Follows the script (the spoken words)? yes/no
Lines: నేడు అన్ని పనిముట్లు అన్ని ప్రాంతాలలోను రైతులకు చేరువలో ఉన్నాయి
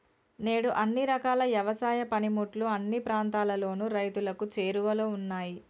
no